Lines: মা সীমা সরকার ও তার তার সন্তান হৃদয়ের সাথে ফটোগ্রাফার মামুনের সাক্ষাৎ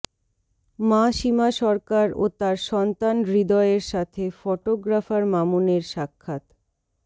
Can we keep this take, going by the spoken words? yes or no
no